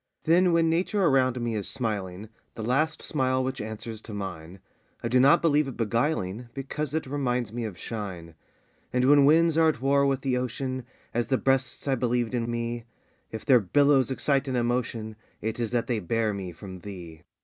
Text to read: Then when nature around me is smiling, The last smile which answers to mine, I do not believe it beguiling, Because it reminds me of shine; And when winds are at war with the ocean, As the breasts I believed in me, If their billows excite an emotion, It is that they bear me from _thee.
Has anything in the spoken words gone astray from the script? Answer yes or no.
no